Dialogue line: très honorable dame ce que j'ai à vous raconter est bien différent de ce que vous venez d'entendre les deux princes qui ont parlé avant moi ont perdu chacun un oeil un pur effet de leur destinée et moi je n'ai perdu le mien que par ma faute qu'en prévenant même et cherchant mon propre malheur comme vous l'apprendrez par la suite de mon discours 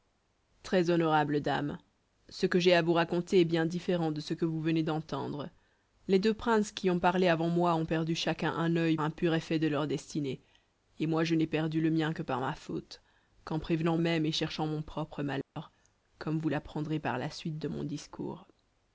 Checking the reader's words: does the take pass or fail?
pass